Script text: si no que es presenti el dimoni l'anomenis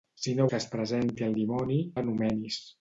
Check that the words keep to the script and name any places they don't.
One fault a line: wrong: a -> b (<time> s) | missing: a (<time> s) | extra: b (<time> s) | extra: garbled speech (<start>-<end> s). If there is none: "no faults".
no faults